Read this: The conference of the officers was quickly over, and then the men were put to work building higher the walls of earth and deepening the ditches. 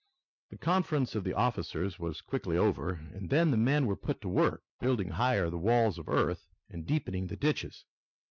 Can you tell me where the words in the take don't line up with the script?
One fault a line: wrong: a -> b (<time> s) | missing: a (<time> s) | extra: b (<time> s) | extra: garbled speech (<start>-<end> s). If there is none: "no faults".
no faults